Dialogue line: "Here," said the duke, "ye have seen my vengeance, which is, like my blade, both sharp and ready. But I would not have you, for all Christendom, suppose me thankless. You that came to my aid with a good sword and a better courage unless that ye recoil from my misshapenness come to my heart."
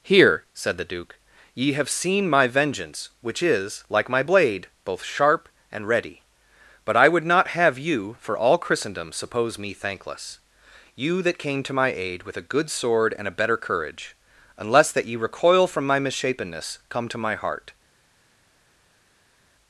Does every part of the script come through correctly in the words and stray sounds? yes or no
yes